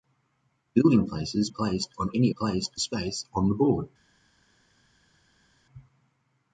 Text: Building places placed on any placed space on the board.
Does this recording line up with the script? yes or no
yes